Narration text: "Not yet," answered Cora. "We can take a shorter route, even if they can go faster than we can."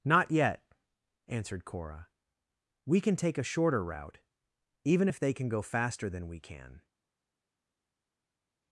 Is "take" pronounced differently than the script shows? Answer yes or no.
no